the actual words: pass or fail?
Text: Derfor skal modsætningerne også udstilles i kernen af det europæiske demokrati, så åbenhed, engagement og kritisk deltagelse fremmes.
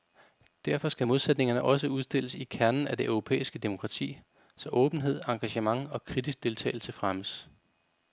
pass